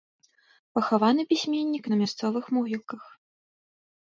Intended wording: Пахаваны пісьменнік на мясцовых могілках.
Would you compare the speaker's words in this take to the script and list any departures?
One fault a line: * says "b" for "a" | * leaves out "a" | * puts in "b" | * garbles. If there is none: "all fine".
all fine